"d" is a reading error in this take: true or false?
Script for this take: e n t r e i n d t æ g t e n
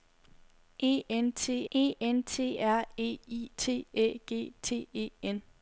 true